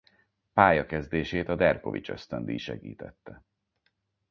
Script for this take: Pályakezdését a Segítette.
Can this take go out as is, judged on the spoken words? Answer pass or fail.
fail